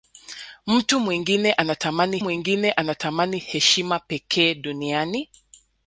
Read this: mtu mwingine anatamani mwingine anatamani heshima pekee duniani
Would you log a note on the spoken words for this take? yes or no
no